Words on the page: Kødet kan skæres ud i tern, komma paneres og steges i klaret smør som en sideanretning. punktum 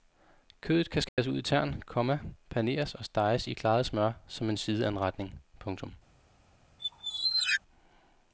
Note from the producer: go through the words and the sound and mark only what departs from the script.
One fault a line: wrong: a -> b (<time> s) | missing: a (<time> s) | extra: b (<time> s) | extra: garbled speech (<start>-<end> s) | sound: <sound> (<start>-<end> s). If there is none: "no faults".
sound: dropout (1.1-1.2 s)
sound: squeak (6.8-7.6 s)